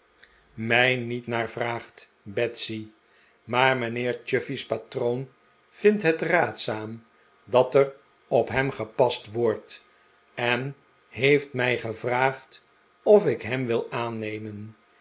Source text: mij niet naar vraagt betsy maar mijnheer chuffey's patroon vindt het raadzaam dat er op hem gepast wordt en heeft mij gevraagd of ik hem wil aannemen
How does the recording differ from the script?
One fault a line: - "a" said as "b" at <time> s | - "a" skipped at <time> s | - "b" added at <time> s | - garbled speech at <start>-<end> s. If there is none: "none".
none